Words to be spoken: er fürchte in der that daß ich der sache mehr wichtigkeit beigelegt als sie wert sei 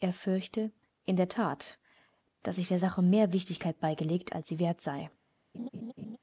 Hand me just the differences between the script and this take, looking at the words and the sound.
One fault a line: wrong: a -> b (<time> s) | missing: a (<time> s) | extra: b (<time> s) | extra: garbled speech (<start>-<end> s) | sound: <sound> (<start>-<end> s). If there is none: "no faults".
sound: laugh (5.5-6.2 s)